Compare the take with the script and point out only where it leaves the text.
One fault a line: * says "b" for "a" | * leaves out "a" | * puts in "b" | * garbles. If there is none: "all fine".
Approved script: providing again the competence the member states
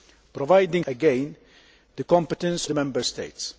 all fine